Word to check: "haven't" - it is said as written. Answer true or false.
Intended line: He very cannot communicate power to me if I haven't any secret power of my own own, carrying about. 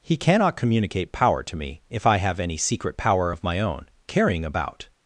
false